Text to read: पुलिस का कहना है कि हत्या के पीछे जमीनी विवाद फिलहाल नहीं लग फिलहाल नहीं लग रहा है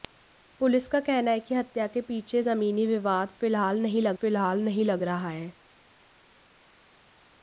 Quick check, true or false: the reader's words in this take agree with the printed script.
true